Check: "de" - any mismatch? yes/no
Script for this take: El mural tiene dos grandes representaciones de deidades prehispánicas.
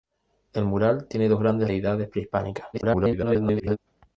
yes